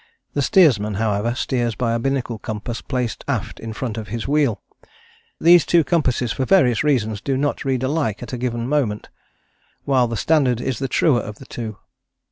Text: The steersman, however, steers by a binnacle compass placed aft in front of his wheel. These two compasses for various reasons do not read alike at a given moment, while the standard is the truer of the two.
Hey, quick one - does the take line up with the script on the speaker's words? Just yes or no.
yes